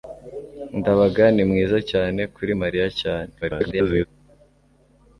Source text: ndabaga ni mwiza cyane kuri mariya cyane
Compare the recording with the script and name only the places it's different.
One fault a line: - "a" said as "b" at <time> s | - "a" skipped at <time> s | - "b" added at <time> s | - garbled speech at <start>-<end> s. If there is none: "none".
- garbled speech at 3.4-4.1 s